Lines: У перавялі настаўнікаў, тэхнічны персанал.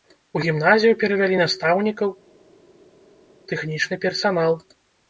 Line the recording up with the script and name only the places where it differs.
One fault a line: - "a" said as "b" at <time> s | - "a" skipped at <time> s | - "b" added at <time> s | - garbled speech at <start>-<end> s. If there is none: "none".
- "гімназію" added at 0.4 s